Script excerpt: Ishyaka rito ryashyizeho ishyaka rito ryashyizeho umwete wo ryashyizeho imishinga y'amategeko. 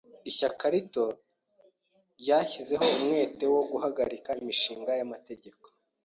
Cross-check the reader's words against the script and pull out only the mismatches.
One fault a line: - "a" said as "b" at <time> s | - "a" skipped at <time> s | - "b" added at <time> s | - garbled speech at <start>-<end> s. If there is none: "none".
- "ishyaka rito ryashyizeho" skipped at 2.9 s
- "ryashyizeho" said as "guhagarika" at 3.7 s